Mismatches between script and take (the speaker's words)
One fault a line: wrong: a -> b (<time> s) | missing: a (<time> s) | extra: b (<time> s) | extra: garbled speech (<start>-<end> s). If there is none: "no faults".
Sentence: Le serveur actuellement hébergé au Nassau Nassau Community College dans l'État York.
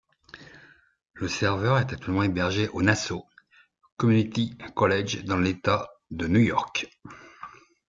extra: est (1.8 s)
missing: Nassau (3.2 s)
extra: de New (6.1 s)